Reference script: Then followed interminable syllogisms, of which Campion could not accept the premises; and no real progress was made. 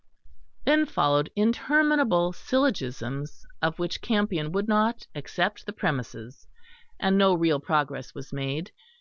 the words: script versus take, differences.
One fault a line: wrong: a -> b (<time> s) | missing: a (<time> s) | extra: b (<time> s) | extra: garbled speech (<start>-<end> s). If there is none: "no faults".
wrong: could -> would (4.5 s)